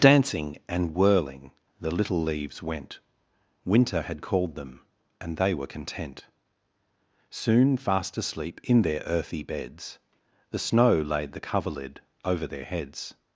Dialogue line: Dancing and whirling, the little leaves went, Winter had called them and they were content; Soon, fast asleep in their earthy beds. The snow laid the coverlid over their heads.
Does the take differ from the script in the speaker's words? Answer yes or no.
no